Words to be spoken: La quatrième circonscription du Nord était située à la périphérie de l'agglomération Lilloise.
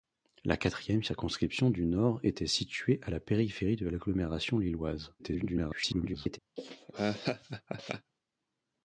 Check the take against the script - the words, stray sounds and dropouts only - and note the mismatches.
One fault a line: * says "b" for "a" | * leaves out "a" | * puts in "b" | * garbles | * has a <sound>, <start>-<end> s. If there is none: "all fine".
* garbles
* has a laugh, 6.6-8.1 s